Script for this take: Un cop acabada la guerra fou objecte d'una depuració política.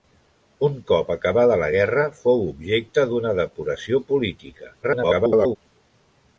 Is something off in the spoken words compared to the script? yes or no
yes